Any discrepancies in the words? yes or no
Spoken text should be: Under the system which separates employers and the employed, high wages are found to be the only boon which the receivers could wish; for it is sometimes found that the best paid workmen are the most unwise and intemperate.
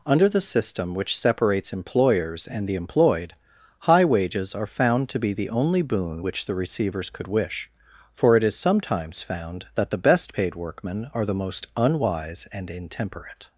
no